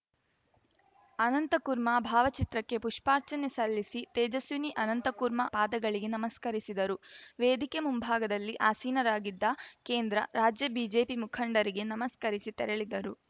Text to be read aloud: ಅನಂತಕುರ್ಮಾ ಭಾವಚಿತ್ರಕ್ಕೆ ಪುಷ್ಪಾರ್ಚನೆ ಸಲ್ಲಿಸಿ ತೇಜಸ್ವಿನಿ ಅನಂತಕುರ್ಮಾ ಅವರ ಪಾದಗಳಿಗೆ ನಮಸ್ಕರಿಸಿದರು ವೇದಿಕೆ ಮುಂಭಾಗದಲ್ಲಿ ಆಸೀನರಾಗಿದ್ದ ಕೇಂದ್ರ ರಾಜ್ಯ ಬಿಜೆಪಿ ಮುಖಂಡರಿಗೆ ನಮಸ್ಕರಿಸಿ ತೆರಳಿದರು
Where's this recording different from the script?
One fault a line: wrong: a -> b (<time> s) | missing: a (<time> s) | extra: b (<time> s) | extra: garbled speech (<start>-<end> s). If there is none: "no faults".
missing: ಅವರ (5.5 s)